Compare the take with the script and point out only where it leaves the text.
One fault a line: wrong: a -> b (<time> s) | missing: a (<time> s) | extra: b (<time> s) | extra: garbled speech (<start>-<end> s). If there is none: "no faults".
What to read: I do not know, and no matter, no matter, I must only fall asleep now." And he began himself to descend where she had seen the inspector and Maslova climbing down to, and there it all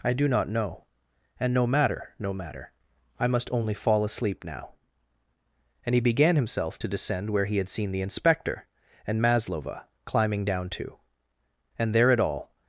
wrong: she -> he (7.5 s)